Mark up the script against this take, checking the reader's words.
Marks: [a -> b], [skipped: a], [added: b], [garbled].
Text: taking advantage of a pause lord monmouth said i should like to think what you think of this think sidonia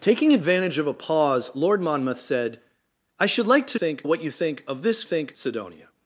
taking advantage of a pause lord monmouth said i should like to think what you think of this think sidonia